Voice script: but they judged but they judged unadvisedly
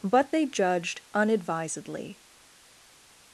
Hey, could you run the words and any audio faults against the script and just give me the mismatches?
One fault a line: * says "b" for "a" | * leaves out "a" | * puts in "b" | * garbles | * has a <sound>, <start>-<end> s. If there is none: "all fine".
* leaves out "but they judged"